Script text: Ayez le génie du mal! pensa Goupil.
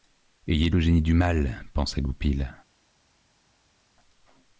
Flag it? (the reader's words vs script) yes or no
no